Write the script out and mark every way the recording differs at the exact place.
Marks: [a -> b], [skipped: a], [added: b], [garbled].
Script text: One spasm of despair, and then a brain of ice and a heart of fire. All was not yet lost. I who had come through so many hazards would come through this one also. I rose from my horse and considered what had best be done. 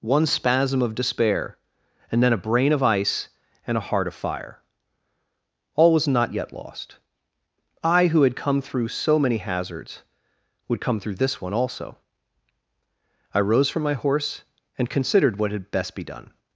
One spasm of despair, and then a brain of ice and a heart of fire. All was not yet lost. I who had come through so many hazards would come through this one also. I rose from my horse and considered what had best be done.